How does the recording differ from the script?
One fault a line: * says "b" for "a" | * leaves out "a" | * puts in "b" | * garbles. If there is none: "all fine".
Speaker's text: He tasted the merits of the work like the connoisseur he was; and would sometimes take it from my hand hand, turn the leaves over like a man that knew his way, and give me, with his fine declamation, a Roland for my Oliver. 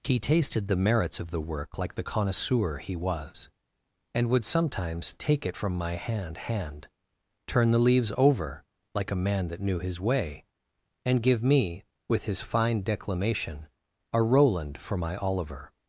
all fine